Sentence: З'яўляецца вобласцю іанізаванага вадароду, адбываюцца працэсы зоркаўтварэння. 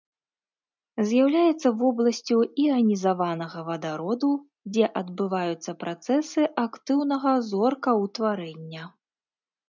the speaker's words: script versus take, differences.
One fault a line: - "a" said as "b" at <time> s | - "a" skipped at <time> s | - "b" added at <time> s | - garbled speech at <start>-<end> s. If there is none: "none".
- "дзе" added at 4.7 s
- "актыўнага" added at 6.6 s